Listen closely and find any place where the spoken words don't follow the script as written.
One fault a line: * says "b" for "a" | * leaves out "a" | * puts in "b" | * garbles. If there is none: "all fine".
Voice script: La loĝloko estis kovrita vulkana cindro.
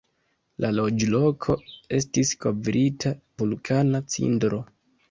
all fine